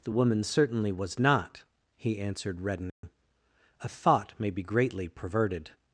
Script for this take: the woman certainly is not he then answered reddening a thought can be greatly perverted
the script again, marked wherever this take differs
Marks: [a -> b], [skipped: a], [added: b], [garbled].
the woman certainly [is -> was] not he [skipped: then] answered reddening a thought [can -> may] be greatly perverted